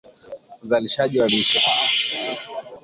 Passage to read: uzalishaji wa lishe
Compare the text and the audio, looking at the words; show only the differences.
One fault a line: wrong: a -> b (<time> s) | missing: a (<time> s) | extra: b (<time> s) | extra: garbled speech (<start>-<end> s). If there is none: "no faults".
no faults